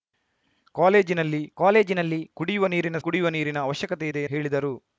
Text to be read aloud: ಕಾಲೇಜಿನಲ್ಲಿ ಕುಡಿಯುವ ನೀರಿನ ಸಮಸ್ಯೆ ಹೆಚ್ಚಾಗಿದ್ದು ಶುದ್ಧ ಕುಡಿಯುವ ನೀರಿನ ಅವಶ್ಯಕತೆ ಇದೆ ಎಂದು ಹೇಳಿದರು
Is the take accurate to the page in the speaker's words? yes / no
no